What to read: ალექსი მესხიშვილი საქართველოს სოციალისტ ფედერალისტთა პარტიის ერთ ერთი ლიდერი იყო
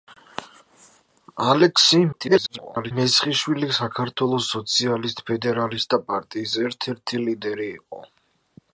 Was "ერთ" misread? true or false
false